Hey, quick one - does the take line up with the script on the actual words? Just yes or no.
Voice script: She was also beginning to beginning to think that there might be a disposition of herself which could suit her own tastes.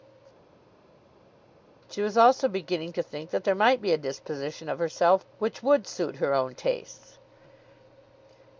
no